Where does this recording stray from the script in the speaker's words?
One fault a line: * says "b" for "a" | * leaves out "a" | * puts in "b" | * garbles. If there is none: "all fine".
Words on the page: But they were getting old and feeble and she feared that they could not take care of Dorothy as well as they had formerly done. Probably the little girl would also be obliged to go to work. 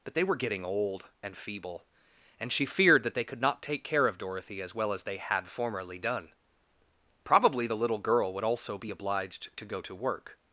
all fine